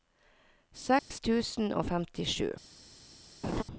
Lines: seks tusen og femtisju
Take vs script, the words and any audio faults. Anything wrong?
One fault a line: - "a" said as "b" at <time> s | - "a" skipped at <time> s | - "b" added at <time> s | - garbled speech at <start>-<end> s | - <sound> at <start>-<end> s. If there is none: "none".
- dropout at 1.0-1.1 s
- laugh at 3.4-3.6 s